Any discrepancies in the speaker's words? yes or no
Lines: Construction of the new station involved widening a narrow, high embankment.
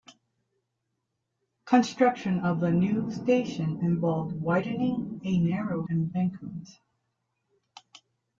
yes